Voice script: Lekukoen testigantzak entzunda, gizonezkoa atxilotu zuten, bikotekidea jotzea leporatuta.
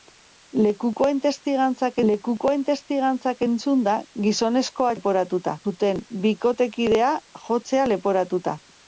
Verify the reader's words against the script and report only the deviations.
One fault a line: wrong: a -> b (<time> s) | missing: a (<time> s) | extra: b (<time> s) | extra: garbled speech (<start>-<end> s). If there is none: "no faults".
extra: lekukoen testigantzak (2.1 s)
wrong: atxilotu -> leporatuta (5.0 s)